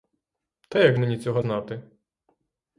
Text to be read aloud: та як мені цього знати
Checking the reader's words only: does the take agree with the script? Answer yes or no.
yes